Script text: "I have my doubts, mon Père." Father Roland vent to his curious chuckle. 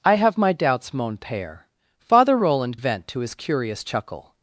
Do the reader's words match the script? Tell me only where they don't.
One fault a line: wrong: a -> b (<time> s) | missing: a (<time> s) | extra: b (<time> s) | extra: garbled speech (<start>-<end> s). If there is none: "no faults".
no faults